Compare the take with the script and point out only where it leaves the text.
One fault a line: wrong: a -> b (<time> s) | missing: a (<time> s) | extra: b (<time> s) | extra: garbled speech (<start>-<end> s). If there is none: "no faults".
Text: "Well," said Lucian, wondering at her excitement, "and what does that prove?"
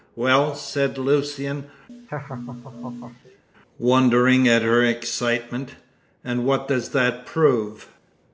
no faults